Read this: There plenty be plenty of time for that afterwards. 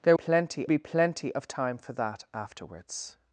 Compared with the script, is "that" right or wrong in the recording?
right